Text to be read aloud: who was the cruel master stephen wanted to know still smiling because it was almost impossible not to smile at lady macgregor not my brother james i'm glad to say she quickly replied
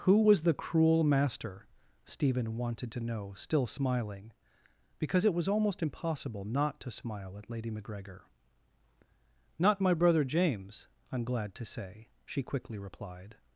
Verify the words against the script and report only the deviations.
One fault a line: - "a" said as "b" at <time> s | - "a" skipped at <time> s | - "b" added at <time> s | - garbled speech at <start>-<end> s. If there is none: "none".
none